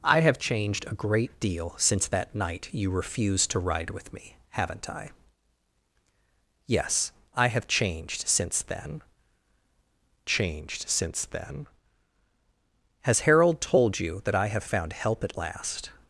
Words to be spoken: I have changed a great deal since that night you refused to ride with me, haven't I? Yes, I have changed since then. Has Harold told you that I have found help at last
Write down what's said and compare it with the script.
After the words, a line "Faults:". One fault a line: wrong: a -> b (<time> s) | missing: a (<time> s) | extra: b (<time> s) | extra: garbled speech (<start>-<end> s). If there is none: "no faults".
I have changed a great deal since that night you refused to ride with me, haven't I? Yes, I have changed since then changed since then. Has Harold told you that I have found help at last
Faults:
extra: changed since then (10.2 s)